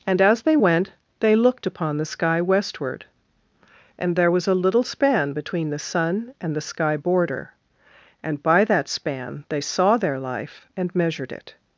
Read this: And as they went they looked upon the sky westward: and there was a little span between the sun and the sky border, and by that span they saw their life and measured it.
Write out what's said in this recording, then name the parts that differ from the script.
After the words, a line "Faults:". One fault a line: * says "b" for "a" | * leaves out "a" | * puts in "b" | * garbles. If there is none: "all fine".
And as they went they looked upon the sky westward: and there was a little span between the sun and the sky border, and by that span they saw their life and measured it.
Faults:
all fine